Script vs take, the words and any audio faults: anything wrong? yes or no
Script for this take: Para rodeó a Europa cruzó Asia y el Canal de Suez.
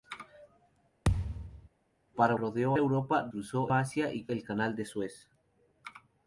yes